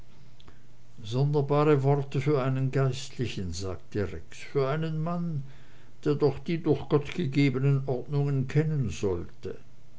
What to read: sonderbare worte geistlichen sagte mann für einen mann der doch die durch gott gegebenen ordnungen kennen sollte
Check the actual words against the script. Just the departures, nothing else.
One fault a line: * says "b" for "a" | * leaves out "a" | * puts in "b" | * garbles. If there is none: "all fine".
* puts in "für einen"
* says "rex" for "mann"